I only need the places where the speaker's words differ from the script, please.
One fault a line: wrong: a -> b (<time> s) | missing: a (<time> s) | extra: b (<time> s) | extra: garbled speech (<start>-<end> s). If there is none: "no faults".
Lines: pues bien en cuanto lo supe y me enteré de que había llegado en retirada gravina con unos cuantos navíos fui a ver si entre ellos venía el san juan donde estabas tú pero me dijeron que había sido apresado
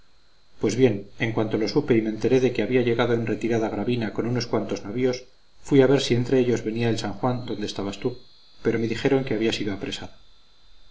no faults